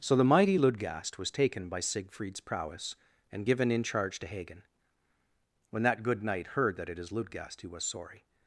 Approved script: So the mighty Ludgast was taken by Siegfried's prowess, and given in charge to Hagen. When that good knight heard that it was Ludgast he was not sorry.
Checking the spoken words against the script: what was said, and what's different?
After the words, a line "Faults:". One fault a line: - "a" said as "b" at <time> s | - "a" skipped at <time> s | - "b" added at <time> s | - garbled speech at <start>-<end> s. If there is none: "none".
So the mighty Ludgast was taken by Siegfried's prowess, and given in charge to Hagen. When that good knight heard that it is Ludgast he was sorry.
Faults:
- "was" said as "is" at 7.0 s
- "not" skipped at 7.8 s